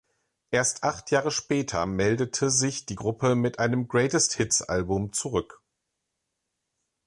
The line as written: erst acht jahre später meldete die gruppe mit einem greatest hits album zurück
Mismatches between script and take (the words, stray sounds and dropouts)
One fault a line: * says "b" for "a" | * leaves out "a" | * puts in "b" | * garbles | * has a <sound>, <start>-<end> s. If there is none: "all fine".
* puts in "sich"